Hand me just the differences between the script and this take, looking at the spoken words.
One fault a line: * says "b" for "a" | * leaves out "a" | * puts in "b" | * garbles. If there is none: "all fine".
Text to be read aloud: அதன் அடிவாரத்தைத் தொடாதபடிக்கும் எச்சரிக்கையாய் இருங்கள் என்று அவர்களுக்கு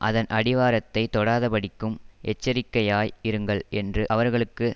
all fine